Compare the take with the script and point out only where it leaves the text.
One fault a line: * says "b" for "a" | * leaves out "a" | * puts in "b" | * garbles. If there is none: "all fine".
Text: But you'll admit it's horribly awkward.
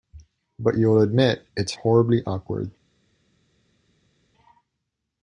all fine